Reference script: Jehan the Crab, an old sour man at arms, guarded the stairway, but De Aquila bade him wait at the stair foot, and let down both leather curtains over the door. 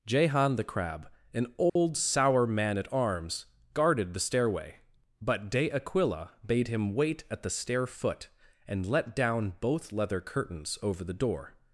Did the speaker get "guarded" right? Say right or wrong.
right